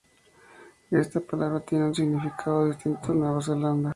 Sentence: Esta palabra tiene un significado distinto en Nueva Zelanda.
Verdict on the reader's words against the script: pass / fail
pass